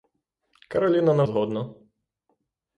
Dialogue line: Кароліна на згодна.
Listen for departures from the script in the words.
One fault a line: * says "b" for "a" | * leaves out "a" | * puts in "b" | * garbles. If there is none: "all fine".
all fine